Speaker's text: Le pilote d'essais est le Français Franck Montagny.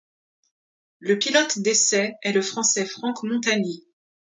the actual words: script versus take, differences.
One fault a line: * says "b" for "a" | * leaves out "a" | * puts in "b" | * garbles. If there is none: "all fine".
all fine